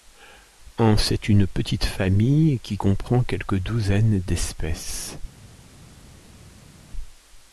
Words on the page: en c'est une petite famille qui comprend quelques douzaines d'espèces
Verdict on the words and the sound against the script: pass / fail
pass